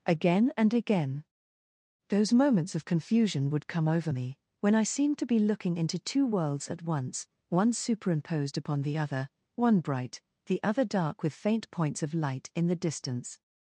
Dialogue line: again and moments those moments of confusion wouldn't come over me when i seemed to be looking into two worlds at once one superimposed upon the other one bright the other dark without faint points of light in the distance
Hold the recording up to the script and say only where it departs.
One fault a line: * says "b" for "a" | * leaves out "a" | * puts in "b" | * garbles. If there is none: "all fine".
* says "again" for "moments"
* says "would" for "wouldn't"
* says "with" for "without"